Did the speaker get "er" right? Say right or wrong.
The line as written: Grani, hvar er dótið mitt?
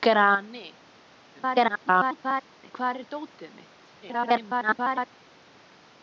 right